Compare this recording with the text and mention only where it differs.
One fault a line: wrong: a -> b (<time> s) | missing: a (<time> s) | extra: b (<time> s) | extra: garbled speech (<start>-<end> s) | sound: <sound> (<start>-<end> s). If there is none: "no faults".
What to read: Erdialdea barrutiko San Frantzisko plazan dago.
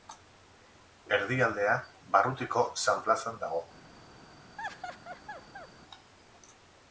missing: Frantzisko (3.0 s)
sound: laugh (4.6-5.7 s)